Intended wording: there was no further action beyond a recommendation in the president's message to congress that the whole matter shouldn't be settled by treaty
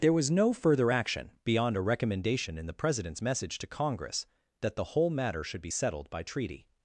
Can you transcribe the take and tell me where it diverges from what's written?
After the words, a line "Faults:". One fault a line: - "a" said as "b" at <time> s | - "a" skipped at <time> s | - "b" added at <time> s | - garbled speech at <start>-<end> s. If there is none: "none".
there was no further action beyond a recommendation in the president's message to congress that the whole matter should be settled by treaty
Faults:
- "shouldn't" said as "should" at 5.4 s